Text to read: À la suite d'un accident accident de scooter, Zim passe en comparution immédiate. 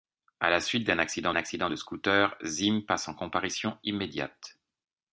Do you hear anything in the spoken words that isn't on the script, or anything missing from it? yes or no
no